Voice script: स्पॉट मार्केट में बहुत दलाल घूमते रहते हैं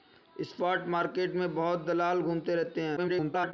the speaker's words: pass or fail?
fail